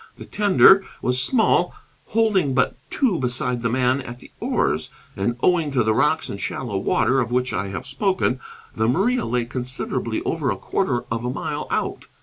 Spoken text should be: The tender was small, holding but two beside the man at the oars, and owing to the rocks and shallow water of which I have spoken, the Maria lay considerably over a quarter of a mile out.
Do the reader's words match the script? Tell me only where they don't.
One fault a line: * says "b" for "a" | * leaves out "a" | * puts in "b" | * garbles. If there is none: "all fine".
all fine